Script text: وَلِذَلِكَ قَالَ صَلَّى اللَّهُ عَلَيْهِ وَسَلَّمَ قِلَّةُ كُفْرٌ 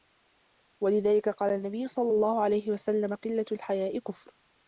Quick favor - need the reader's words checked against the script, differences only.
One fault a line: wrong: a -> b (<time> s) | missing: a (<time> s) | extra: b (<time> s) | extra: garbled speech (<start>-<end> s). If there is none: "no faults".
extra: النَّبِيُّ (1.5 s)
extra: الْحَيَاءِ (3.5 s)